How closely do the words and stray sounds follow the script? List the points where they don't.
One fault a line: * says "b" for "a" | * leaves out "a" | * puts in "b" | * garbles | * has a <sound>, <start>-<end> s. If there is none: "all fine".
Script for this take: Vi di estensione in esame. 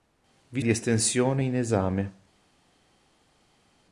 all fine